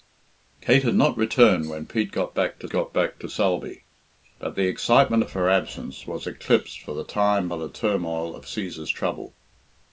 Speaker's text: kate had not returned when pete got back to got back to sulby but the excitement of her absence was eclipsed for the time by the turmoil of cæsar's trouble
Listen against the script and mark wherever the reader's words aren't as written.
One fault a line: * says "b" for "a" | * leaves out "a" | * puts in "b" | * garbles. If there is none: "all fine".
all fine